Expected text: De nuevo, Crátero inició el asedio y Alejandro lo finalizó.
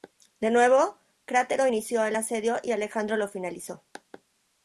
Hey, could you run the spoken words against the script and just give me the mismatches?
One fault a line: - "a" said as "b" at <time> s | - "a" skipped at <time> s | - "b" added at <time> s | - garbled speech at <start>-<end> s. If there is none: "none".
none